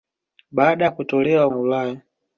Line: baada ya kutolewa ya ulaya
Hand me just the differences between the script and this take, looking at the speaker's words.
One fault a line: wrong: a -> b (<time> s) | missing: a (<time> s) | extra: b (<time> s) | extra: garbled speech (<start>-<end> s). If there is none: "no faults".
no faults